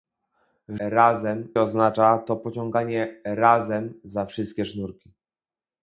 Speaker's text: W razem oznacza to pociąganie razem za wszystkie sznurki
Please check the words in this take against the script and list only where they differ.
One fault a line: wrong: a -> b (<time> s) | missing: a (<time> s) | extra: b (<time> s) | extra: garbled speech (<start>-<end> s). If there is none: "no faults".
no faults